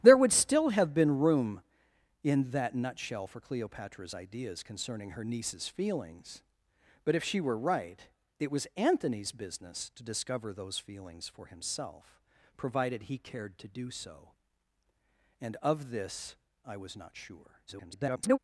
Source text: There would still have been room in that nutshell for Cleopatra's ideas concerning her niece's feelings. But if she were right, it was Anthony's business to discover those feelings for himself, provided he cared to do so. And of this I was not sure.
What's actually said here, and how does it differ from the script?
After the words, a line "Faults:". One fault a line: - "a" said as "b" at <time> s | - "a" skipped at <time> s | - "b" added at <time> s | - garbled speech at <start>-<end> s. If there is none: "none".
There would still have been room in that nutshell for Cleopatra's ideas concerning her niece's feelings. But if she were right, it was Anthony's business to discover those feelings for himself, provided he cared to do so. And of this I was not sure. [garbled]
Faults:
- garbled speech at 17.7-18.4 s